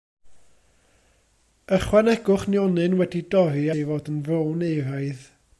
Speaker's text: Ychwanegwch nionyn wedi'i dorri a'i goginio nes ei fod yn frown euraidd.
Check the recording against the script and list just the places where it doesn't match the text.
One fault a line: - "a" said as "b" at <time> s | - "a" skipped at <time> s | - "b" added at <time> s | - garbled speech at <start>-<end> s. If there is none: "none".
- "a'i goginio nes" skipped at 3.6 s